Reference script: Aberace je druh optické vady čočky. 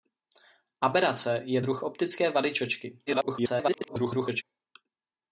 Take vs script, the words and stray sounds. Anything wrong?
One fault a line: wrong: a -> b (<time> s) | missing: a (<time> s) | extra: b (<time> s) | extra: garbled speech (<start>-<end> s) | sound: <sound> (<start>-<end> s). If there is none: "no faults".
extra: garbled speech (3.1-4.4 s)